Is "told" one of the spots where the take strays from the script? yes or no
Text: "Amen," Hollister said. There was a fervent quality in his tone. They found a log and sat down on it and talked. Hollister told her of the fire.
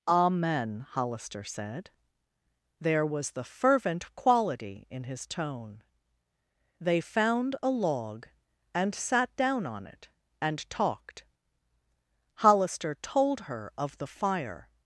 no